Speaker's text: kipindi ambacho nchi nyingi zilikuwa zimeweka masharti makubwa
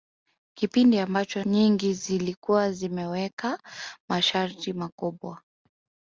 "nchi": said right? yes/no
no